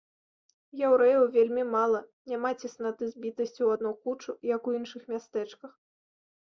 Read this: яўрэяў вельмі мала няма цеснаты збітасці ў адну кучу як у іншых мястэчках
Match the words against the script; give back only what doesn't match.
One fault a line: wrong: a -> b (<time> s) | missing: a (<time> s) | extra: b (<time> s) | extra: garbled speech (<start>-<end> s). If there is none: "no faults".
no faults